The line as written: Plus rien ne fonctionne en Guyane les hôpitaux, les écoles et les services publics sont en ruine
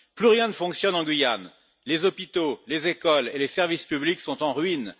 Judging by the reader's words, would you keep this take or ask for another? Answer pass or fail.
pass